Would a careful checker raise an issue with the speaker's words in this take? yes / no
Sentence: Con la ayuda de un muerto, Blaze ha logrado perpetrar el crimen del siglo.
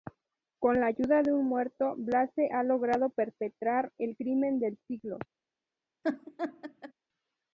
no